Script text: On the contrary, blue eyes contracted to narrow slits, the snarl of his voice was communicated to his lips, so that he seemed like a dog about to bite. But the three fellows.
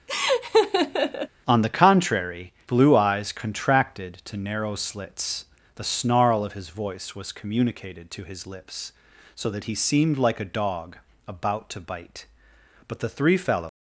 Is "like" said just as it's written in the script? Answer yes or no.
yes